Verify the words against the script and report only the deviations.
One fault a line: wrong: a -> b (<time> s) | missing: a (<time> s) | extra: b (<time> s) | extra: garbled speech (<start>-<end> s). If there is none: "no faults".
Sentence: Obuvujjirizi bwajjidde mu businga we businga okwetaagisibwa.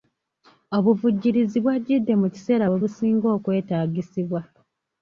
wrong: businga -> kiseera (2.3 s)